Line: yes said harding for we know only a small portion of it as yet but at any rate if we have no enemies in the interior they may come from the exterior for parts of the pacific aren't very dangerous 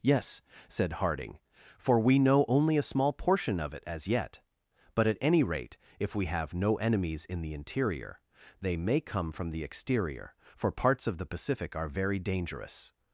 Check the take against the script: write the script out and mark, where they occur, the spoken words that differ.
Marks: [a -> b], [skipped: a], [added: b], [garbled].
yes said harding for we know only a small portion of it as yet but at any rate if we have no enemies in the interior they may come from the exterior for parts of the pacific [aren't -> are] very dangerous